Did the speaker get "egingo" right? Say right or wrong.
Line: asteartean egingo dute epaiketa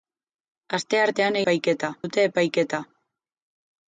wrong